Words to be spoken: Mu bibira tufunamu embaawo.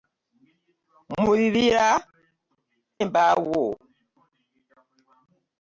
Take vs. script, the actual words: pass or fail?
fail